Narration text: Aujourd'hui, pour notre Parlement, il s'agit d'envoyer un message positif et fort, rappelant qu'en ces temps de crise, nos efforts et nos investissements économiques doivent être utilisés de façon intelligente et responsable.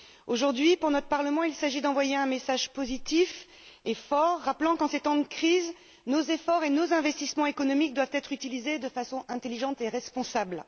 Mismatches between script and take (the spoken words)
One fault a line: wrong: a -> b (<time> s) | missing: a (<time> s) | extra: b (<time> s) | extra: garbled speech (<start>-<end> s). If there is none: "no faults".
no faults